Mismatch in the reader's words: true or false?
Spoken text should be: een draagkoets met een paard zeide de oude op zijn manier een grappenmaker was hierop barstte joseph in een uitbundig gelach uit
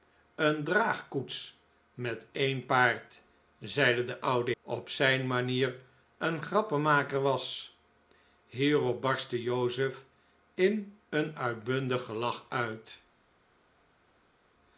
false